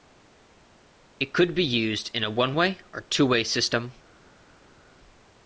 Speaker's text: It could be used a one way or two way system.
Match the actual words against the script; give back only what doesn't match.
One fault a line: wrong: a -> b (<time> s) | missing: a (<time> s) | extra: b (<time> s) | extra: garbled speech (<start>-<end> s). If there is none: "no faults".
extra: in (2.1 s)